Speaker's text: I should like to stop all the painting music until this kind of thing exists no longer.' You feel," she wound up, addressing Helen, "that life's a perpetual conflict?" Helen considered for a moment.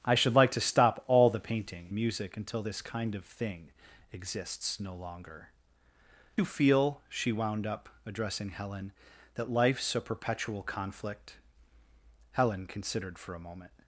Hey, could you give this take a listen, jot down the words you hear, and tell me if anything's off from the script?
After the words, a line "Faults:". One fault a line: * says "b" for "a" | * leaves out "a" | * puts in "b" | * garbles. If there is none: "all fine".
I should like to stop all the painting music until this kind of thing exists no longer.' You feel," she wound up, addressing Helen, "that life's a perpetual conflict?" Helen considered for a moment.
Faults:
all fine